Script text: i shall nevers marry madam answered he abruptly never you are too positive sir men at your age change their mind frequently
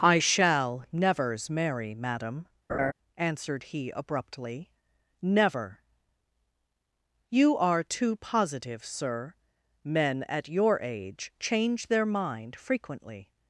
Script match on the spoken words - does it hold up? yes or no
yes